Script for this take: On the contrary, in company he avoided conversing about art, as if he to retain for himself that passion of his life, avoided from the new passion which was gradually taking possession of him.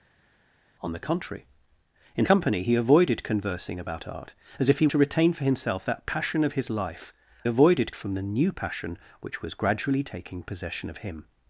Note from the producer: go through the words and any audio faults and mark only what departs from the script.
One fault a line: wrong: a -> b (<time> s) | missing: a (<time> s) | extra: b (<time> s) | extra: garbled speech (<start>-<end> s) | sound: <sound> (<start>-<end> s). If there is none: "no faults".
no faults